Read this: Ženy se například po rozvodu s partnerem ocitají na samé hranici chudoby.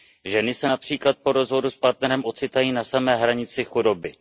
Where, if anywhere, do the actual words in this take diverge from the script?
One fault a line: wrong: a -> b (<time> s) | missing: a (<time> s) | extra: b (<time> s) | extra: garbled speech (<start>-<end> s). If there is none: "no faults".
no faults